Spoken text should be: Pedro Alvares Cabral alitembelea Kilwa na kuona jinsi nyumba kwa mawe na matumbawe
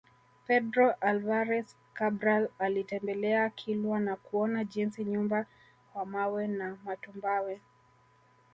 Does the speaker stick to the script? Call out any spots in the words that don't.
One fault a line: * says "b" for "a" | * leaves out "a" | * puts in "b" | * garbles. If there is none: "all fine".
all fine